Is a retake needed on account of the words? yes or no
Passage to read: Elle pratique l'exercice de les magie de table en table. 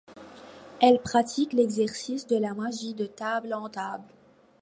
yes